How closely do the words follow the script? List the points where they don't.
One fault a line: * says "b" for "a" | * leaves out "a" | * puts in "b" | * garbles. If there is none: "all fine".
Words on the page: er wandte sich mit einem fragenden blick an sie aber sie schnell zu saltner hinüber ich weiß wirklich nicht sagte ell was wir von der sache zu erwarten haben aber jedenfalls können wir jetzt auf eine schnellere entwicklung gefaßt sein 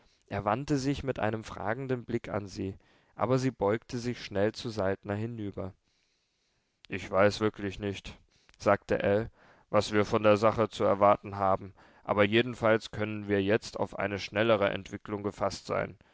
* puts in "beugte sich"